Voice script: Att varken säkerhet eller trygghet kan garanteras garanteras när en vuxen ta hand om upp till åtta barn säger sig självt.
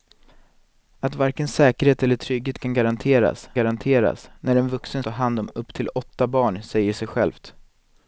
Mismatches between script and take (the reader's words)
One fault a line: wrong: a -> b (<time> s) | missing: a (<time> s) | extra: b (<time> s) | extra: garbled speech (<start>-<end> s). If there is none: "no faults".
no faults